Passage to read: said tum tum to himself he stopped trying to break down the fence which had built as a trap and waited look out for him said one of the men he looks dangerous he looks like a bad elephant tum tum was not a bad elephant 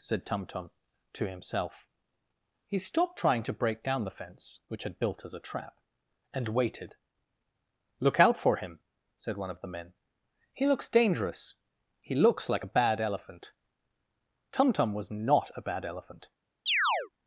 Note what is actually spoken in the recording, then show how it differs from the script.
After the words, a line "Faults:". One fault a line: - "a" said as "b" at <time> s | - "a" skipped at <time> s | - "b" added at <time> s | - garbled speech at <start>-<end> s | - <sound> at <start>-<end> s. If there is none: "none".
said tum tum to himself he stopped trying to break down the fence which had built as a trap and waited look out for him said one of the men he looks dangerous he looks like a bad elephant tum tum was not a bad elephant
Faults:
- chirp at 16.7-17.1 s